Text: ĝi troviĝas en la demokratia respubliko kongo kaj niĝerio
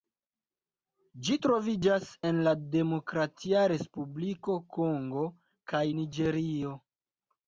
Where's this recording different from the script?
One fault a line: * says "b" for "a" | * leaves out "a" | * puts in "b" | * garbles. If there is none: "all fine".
all fine